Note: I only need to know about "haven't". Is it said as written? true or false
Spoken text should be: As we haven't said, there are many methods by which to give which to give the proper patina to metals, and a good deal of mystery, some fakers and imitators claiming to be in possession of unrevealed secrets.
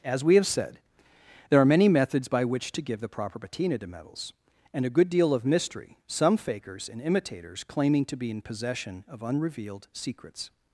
false